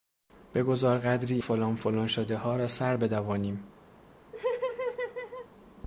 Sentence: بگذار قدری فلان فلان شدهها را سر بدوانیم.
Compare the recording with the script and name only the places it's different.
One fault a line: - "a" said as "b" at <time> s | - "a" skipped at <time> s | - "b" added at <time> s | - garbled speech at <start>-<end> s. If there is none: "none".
none